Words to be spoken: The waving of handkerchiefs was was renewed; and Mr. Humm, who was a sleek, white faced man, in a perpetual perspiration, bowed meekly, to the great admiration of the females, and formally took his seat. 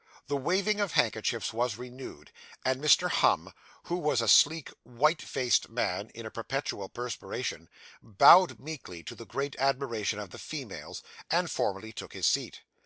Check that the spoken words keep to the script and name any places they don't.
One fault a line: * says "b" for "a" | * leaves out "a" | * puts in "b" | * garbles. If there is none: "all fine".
* leaves out "was"